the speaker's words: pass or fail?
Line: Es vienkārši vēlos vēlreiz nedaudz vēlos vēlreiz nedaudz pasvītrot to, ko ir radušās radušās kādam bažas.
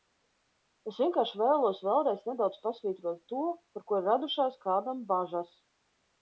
fail